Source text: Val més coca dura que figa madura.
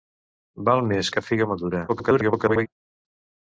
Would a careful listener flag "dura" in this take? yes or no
yes